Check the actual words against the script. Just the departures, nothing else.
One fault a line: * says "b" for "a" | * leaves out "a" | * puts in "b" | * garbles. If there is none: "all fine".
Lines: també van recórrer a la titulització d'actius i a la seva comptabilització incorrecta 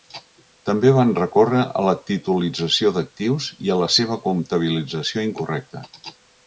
all fine